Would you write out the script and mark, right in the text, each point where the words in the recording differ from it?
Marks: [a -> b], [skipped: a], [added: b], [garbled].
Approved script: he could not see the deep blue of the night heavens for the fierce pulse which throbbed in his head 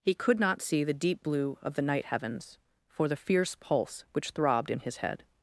he could not see the deep blue of the night heavens for the fierce pulse which throbbed in his head